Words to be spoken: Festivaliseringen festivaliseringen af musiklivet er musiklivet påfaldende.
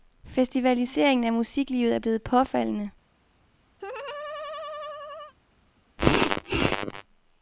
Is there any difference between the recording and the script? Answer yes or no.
yes